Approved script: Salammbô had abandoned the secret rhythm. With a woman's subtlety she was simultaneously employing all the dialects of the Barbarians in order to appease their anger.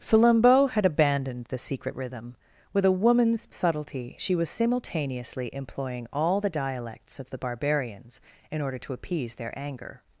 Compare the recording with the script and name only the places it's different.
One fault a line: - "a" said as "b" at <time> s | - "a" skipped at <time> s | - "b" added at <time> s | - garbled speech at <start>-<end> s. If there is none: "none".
none